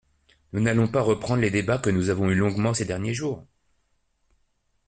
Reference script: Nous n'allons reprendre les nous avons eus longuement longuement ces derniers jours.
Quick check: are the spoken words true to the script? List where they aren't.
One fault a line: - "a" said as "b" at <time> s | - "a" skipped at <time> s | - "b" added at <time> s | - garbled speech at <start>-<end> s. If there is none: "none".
- "pas" added at 0.9 s
- "débats que" added at 1.5 s
- "longuement" skipped at 2.7 s